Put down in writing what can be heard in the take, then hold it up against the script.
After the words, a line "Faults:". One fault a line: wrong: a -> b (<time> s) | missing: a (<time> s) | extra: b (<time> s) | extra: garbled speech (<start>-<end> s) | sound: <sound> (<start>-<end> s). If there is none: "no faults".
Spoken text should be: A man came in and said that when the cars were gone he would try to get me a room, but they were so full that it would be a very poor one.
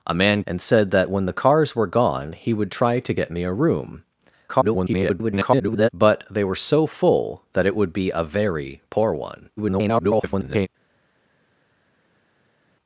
A man and said that when the cars were gone he would try to get me a room, [garbled] but they were so full that it would be a very poor one. [garbled]
Faults:
missing: came in (0.4 s)
extra: garbled speech (4.5-5.9 s)
extra: garbled speech (9.6-10.7 s)